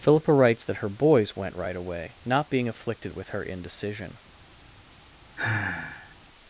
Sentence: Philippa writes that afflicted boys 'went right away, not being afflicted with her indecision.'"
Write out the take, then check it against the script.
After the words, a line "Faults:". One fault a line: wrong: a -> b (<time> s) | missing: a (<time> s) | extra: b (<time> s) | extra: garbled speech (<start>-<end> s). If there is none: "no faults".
Philippa writes that her boys 'went right away, not being afflicted with her indecision.'"
Faults:
wrong: afflicted -> her (0.8 s)